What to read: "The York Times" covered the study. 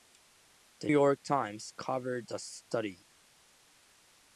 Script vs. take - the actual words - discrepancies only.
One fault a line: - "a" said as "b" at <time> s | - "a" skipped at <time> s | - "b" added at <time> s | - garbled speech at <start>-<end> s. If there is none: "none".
none